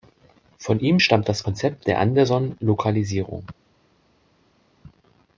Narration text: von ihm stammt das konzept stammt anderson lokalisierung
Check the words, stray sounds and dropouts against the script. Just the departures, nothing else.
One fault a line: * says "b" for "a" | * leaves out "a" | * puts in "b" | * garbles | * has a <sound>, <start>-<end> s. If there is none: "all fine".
* says "der" for "stammt"